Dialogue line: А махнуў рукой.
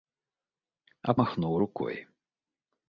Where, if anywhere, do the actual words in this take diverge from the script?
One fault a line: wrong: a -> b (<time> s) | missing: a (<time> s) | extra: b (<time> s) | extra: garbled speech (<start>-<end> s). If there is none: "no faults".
no faults